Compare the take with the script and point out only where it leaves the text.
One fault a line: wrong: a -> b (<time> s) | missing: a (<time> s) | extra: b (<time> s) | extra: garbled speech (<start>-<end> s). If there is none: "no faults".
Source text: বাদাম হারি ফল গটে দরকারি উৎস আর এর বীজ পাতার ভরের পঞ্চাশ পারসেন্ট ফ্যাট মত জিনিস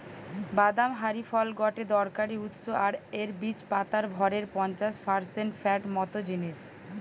no faults